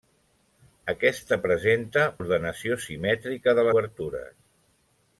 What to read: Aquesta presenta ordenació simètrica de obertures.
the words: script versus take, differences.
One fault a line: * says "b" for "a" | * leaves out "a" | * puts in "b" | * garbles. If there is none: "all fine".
all fine